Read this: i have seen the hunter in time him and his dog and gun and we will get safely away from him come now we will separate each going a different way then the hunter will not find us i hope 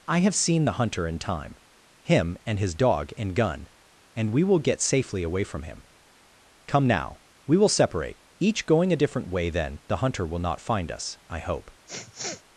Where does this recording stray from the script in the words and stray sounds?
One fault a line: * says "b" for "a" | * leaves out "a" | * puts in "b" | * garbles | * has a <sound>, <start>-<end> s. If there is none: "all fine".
* has a sniff, 11.9-12.4 s